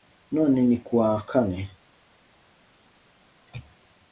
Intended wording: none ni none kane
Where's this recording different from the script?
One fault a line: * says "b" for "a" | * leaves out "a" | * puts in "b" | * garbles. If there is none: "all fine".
* says "kuwa" for "none"